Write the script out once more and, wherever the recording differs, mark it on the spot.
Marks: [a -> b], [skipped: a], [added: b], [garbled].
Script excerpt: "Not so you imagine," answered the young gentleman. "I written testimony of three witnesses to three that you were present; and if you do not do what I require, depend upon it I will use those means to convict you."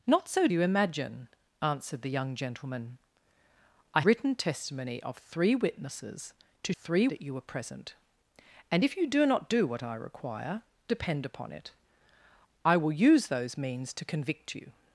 "Not so you imagine," answered the young gentleman. "I written testimony of three witnesses to three that you were present; and if you do not do what I require, depend upon it I will use those means to convict you."